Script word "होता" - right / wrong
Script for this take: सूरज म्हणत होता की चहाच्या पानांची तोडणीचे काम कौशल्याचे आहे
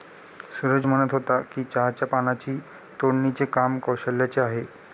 right